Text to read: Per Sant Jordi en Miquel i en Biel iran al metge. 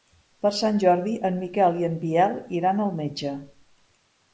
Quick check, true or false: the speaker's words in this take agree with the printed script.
true